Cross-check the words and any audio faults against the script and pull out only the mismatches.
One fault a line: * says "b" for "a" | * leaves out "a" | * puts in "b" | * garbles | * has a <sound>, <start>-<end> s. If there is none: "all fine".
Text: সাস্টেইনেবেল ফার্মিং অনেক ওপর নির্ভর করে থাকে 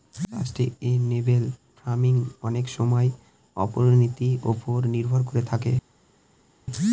* puts in "সময় অর্থনীতির"